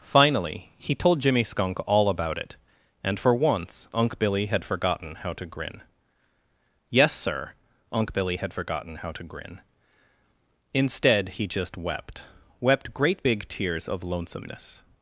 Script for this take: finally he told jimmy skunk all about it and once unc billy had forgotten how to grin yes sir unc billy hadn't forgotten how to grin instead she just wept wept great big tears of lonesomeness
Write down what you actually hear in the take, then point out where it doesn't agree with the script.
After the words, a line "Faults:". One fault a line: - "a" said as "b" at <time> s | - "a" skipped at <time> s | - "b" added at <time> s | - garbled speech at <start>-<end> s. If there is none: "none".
finally he told jimmy skunk all about it and for once unc billy had forgotten how to grin yes sir unc billy had forgotten how to grin instead he just wept wept great big tears of lonesomeness
Faults:
- "for" added at 3.2 s
- "hadn't" said as "had" at 8.4 s
- "she" said as "he" at 11.3 s